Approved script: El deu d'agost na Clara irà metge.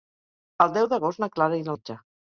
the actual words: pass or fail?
pass